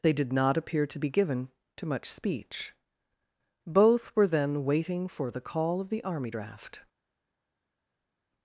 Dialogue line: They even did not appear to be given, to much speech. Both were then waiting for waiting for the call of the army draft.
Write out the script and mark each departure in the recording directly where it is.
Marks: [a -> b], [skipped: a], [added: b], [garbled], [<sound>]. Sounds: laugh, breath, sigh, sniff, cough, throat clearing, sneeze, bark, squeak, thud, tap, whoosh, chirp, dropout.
They [skipped: even] did not appear to be given, to much speech. Both were then waiting for [skipped: waiting for] the call of the army draft.